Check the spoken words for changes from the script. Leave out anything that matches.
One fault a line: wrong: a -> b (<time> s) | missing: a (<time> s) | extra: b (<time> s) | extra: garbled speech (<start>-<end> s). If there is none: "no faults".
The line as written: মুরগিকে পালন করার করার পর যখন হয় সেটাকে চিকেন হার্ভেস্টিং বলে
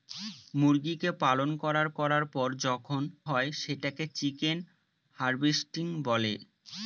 no faults